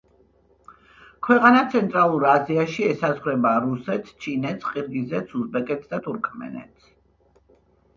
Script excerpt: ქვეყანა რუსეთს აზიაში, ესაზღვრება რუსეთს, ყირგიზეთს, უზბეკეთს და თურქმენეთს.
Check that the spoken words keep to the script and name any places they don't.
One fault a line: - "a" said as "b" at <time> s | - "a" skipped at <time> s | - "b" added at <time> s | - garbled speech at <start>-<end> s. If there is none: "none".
- "რუსეთს" said as "ცენტრალურ" at 1.7 s
- "ჩინეთს" added at 4.2 s